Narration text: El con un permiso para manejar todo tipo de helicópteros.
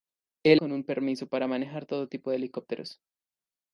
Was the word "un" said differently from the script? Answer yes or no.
no